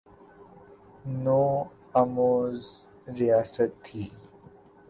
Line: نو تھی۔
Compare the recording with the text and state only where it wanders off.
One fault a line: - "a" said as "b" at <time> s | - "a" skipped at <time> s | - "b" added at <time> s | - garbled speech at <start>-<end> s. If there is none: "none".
- "آموز ریاست" added at 2.0 s